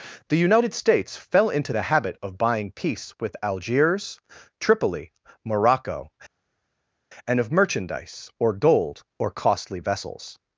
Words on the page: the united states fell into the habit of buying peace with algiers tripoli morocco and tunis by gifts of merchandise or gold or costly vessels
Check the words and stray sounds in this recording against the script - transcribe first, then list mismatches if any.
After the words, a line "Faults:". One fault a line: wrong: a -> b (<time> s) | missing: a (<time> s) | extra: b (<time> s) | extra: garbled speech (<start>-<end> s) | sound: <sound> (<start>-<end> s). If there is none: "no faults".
the united states fell into the habit of buying peace with algiers tripoli morocco and of merchandise or gold or costly vessels
Faults:
missing: tunis by gifts (7.4 s)